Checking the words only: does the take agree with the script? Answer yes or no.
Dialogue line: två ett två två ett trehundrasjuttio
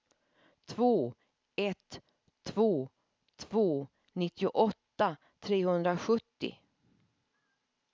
no